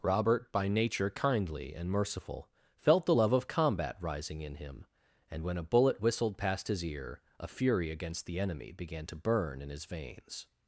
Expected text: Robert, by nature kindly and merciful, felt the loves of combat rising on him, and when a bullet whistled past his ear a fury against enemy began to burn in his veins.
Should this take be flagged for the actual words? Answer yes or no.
yes